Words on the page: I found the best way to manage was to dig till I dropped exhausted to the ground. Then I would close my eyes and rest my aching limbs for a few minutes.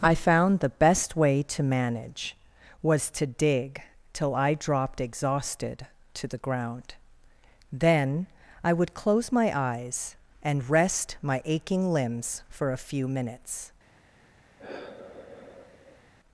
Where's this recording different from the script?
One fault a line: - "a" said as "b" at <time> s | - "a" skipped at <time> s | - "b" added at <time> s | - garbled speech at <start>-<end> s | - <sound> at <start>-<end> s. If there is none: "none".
- sigh at 14.6-16.1 s